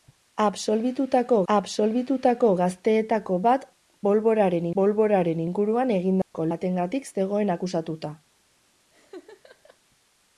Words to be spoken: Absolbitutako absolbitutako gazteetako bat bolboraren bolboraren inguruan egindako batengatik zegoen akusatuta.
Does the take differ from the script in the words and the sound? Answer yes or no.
yes